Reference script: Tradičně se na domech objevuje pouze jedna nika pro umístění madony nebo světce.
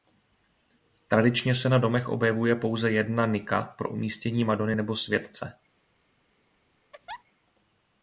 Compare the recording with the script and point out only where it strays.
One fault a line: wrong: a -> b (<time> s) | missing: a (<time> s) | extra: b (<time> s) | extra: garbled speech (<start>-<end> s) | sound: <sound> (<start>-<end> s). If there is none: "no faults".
sound: laugh (6.9-7.2 s)